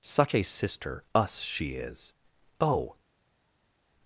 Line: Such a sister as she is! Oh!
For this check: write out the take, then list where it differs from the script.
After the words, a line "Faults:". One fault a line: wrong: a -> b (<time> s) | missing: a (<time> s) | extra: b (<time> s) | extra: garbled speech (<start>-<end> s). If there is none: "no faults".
Such a sister us she is! Oh!
Faults:
wrong: as -> us (1.1 s)